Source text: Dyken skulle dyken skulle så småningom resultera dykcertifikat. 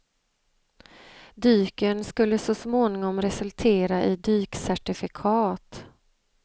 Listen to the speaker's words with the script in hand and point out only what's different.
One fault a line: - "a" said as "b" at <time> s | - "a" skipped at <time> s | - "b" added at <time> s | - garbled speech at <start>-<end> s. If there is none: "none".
- "dyken skulle" skipped at 2.4 s
- "i" added at 4.0 s